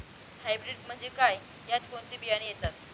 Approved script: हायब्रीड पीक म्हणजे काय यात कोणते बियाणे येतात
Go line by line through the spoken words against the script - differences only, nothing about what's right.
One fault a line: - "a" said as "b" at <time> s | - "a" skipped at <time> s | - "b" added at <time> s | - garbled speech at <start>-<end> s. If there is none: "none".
- "पीक" skipped at 0.8 s